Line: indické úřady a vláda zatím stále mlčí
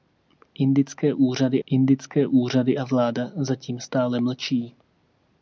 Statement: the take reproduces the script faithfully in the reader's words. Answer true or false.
false